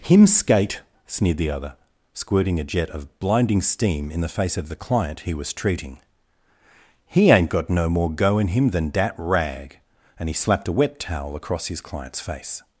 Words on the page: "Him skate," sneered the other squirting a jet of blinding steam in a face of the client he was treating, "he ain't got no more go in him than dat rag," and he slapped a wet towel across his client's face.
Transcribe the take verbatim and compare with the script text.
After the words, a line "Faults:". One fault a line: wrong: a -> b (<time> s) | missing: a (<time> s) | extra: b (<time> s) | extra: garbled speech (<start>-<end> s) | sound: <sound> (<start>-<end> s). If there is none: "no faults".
"Him skate," sneered the other squirting a jet of blinding steam in the face of the client he was treating, "he ain't got no more go in him than dat rag," and he slapped a wet towel across his client's face.
Faults:
wrong: a -> the (4.2 s)